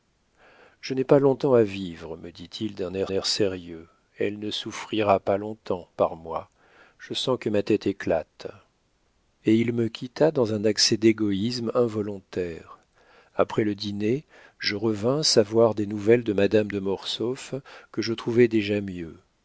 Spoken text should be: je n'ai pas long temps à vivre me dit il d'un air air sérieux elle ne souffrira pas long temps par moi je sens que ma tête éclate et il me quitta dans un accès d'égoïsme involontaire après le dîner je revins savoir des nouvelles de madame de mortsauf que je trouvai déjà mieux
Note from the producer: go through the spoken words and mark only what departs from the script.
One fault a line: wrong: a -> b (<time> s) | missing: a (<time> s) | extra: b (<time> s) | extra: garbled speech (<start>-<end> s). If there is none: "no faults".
no faults